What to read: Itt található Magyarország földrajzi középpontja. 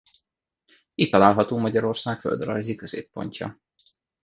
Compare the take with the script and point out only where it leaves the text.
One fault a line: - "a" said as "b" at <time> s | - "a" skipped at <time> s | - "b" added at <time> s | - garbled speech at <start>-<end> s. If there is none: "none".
none